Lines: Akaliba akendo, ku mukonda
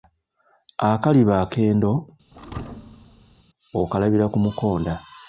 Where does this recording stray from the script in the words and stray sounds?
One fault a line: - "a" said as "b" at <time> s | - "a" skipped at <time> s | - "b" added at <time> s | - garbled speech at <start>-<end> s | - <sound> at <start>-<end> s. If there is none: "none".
- thud at 2.3-3.4 s
- "okalabira" added at 3.8 s